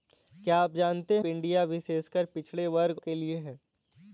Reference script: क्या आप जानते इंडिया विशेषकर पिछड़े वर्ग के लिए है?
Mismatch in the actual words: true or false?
false